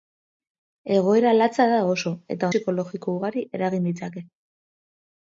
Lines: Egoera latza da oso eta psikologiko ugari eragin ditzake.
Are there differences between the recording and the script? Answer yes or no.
no